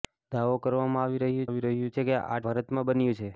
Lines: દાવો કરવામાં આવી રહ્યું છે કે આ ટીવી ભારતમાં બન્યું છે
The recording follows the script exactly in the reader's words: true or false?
false